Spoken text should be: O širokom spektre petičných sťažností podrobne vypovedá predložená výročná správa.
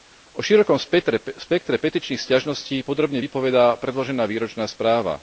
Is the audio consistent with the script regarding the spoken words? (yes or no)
yes